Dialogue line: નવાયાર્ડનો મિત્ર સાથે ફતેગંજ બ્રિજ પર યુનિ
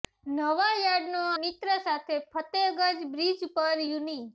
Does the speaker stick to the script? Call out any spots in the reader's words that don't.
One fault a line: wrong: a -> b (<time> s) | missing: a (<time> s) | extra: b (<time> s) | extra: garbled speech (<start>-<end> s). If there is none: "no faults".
no faults